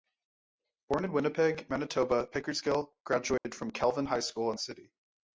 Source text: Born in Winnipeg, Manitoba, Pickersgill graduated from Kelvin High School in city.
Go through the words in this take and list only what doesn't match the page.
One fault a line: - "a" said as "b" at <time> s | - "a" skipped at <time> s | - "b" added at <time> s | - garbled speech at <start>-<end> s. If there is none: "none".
none